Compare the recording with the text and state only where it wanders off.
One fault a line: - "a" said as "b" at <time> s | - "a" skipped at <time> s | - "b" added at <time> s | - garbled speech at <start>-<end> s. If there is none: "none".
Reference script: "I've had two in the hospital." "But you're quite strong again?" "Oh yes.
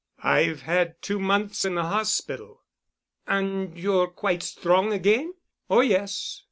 - "months" added at 1.2 s
- "But" said as "And" at 3.2 s